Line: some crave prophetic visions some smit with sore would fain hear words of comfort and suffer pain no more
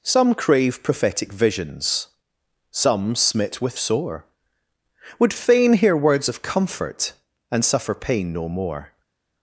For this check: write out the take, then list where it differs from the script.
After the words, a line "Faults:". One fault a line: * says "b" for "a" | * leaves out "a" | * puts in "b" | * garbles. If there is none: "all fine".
some crave prophetic visions some smit with sore would fain hear words of comfort and suffer pain no more
Faults:
all fine